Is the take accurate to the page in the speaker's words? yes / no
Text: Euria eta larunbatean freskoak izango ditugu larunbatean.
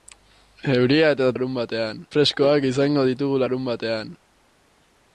yes